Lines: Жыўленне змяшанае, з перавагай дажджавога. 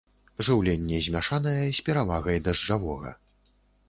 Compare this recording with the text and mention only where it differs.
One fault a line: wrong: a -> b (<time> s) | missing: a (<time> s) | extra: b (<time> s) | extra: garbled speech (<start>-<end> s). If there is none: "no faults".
no faults